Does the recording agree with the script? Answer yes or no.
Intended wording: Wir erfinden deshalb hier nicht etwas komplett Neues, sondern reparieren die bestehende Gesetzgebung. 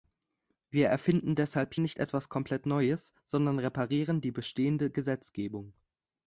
no